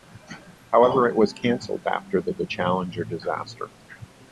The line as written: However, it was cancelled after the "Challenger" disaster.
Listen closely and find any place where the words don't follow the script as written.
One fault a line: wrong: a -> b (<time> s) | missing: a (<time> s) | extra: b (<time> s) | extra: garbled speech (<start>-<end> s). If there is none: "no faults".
extra: the (2.3 s)